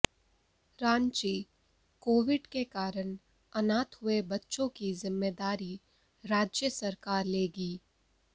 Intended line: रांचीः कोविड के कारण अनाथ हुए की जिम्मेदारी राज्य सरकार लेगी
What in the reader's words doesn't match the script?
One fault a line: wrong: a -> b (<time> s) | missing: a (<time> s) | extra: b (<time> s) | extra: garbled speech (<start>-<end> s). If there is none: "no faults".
extra: बच्चों (4.3 s)